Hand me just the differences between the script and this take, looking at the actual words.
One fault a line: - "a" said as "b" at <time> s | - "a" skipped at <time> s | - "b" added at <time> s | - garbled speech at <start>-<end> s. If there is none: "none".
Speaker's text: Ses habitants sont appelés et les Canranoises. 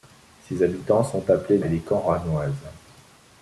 none